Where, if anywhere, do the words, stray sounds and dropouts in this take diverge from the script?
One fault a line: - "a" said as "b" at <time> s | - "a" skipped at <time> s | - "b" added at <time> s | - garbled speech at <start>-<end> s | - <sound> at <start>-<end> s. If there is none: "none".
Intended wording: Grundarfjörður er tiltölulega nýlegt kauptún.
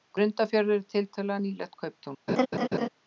- laugh at 2.3-2.9 s